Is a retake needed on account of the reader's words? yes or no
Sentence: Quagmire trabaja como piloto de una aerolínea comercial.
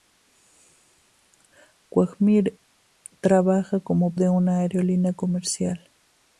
yes